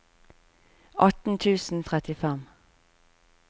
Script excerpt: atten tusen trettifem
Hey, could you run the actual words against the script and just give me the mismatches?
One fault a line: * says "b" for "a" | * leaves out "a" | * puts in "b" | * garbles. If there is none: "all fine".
all fine